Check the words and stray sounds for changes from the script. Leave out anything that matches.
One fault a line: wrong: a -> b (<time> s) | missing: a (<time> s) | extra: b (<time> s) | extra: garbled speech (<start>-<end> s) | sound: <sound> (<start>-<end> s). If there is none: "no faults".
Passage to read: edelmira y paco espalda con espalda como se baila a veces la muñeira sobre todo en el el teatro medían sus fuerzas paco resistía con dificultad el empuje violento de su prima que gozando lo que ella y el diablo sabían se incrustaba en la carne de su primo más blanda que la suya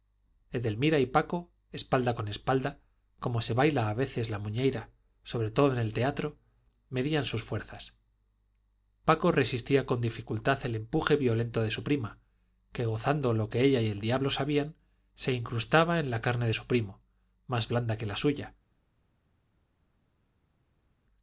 missing: el (5.9 s)